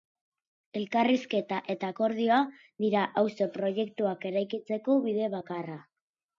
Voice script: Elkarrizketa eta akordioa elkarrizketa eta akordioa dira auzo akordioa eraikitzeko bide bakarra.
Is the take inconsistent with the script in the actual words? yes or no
yes